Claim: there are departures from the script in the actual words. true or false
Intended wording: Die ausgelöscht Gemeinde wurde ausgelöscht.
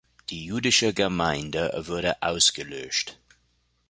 true